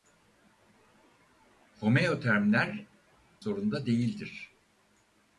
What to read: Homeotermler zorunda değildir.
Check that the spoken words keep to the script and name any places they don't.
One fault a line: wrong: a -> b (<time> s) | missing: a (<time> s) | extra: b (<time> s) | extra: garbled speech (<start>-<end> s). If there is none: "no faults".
no faults